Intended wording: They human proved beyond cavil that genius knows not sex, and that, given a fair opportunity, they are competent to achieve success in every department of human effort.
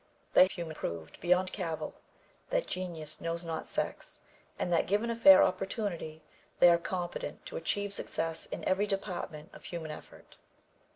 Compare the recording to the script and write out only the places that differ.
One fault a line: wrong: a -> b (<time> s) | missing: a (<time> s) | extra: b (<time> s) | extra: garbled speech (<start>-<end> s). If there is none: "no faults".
no faults